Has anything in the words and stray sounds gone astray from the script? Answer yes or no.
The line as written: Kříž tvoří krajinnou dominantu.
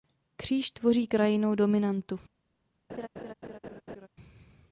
yes